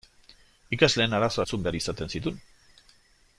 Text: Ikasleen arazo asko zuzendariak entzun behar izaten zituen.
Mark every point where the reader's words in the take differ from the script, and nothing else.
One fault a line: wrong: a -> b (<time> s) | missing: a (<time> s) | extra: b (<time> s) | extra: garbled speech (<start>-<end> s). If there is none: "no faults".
missing: asko zuzendariak (1.4 s)